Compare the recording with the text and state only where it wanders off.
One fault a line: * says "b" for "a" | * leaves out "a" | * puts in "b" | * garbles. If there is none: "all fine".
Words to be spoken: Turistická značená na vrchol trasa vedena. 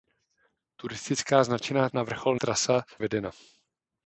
all fine